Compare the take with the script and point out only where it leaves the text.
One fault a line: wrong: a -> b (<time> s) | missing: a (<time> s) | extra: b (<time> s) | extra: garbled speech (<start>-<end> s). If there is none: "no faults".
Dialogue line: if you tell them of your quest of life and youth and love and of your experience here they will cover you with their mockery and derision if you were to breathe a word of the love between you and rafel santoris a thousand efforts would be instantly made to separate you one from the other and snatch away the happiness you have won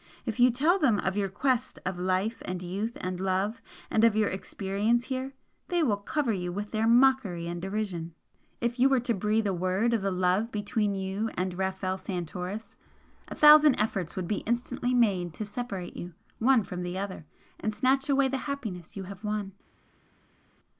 no faults